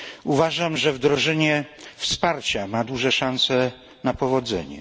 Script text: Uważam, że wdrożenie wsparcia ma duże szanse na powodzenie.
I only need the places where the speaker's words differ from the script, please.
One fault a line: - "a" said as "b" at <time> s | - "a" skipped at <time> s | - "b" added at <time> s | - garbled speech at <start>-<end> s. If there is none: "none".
none